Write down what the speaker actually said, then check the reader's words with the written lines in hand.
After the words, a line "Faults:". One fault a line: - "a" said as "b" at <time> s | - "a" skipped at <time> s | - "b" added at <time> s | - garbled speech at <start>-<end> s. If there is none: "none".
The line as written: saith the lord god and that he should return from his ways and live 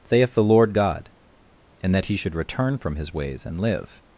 saith the lord god and that he should return from his ways and live
Faults:
none